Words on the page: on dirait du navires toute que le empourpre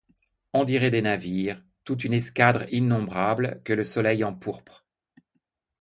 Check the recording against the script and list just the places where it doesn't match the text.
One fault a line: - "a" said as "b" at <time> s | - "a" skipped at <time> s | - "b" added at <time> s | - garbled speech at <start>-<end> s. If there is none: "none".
- "du" said as "des" at 0.9 s
- "une escadre innombrable" added at 2.0 s
- "soleil" added at 3.8 s